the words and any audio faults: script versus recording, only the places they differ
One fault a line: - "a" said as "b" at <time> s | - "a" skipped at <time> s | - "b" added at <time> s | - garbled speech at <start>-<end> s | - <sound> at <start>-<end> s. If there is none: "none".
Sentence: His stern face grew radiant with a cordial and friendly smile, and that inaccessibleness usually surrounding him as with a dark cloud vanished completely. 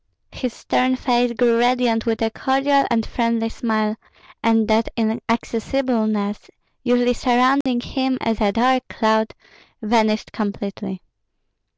- dropout at 7.6-7.7 s
- "with" skipped at 8.4 s